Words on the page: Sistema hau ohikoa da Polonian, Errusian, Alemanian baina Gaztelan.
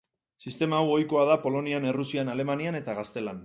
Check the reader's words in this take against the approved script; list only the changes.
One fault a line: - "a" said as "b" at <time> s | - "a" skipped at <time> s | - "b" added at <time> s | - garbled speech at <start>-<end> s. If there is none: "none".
- "baina" said as "eta" at 2.8 s